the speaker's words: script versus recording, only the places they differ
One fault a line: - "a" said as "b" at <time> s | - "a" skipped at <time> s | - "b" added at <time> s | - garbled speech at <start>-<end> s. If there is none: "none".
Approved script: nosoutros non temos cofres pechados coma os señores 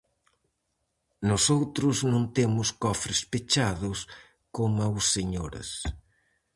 none